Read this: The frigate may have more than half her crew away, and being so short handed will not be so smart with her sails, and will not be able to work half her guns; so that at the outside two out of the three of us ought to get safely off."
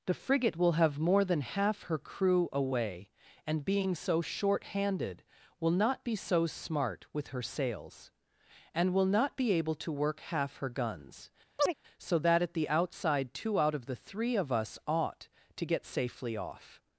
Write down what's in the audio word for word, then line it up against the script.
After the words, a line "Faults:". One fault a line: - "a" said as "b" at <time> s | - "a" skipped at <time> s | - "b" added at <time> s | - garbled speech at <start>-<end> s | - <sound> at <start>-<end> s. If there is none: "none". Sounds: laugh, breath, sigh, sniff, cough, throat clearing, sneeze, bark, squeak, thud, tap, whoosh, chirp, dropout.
The frigate will have more than half her crew away, and being so short handed will not be so smart with her sails, and will not be able to work half her guns; so that at the outside two out of the three of us ought to get safely off."
Faults:
- "may" said as "will" at 0.6 s
- chirp at 11.6-11.7 s